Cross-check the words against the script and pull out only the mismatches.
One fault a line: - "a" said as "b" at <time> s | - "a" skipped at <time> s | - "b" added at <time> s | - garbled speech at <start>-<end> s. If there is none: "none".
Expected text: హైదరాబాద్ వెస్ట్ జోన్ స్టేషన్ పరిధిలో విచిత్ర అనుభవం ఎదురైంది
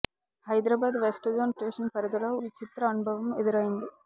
none